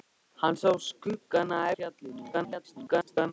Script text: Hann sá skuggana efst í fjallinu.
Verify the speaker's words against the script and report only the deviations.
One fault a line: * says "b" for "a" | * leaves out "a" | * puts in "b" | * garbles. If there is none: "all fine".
* leaves out "efst"
* garbles